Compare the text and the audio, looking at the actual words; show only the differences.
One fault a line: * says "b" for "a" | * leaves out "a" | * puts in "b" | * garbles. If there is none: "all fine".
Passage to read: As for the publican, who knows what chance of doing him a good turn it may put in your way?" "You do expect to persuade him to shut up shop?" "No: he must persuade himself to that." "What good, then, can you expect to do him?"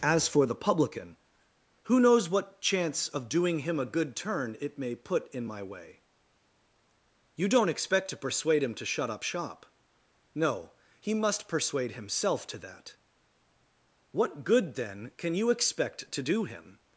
* says "my" for "your"
* says "don't" for "do"